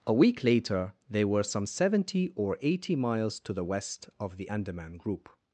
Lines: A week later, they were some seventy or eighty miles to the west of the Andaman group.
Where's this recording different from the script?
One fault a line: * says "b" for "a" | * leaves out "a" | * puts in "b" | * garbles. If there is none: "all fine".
all fine